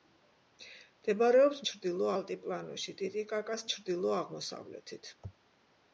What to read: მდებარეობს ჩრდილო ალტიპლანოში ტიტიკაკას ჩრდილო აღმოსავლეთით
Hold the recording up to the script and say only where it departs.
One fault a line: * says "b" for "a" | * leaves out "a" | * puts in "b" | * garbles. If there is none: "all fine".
all fine